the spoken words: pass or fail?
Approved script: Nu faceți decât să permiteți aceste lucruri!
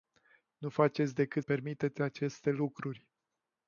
fail